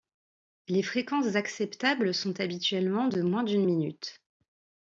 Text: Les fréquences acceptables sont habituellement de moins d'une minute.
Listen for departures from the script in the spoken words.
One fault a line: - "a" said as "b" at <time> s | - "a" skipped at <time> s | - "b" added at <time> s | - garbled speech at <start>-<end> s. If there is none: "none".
none